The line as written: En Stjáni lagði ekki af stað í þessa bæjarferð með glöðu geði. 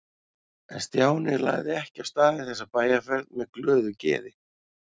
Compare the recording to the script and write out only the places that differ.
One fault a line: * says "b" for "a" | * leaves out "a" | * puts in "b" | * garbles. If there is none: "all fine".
all fine